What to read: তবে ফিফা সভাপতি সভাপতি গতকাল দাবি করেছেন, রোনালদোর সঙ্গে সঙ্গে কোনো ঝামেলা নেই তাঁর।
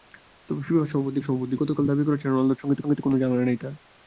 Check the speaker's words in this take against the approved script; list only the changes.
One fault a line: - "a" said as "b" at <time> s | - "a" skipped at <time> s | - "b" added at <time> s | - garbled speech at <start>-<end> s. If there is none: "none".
none